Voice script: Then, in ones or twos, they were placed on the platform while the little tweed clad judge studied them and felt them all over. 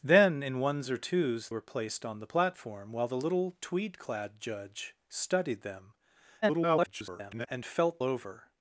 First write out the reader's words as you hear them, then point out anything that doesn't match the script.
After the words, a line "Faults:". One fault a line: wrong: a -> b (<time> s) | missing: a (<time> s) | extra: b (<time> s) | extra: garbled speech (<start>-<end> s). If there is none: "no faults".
Then, in ones or twos, were placed on the platform while the little tweed clad judge studied them [garbled] and felt over.
Faults:
missing: they (1.5 s)
extra: garbled speech (6.4-7.5 s)
missing: them all (8.0 s)